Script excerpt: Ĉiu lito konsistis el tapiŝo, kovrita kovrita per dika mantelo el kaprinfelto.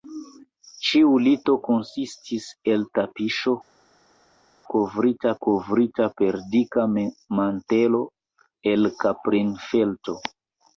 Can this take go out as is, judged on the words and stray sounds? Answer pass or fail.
pass